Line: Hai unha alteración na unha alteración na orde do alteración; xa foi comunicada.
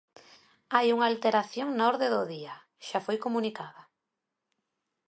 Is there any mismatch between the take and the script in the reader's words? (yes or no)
yes